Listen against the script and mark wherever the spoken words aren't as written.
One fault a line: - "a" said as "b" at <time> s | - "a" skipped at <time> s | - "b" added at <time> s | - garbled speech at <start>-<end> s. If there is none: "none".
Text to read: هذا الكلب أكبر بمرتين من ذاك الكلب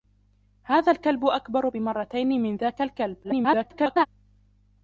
- garbled speech at 3.2-4.1 s